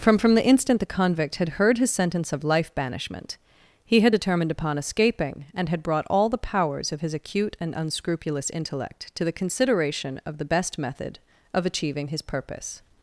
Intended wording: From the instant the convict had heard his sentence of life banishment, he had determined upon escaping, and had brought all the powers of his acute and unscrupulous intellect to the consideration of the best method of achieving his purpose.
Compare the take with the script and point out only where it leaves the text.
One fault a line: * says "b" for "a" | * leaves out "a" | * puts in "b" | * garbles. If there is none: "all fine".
* puts in "from"